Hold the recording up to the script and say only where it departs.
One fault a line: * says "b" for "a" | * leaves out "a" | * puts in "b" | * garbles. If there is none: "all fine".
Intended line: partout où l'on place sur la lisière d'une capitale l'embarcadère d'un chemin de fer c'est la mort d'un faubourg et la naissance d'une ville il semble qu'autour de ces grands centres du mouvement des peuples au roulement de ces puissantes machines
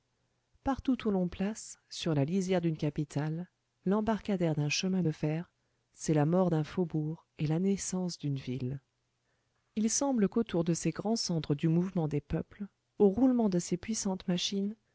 all fine